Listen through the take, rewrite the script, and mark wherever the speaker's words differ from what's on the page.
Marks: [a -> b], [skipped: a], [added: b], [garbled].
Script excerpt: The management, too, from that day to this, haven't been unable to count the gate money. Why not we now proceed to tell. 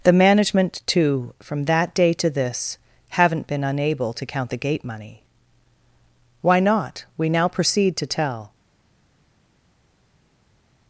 The management, too, from that day to this, haven't been unable to count the gate money. Why not we now proceed to tell.